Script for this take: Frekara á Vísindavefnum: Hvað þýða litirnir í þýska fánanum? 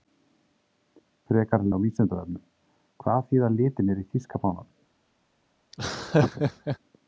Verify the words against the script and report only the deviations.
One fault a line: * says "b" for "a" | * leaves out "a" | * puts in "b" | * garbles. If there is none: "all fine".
all fine